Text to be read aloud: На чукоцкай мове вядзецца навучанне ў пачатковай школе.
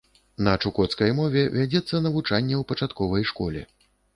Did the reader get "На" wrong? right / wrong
right